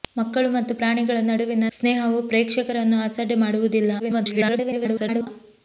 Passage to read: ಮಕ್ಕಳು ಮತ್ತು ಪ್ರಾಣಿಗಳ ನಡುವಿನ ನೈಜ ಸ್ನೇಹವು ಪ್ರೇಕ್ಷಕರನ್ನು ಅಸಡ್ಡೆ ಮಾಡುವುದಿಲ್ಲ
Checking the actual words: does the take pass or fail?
fail